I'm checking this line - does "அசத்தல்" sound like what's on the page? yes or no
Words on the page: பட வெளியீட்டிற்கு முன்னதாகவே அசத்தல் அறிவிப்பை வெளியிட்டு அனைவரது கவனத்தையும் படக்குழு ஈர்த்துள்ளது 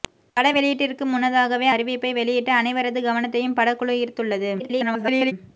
no